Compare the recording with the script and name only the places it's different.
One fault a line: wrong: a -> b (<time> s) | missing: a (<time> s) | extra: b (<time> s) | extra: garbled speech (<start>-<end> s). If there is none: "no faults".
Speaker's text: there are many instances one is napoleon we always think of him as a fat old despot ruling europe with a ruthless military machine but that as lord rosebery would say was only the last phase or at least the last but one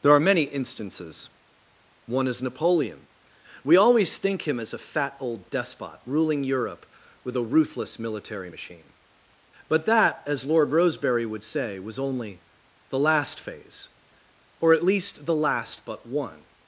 missing: of (4.5 s)